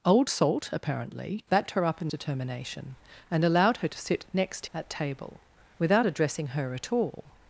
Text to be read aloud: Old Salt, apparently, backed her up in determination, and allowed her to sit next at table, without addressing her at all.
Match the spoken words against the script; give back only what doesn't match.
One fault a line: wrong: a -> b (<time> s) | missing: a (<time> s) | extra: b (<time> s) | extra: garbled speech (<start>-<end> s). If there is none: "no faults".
no faults